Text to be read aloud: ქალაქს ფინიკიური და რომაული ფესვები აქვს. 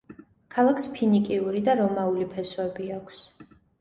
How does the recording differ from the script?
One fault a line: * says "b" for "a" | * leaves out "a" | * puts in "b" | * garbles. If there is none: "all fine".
all fine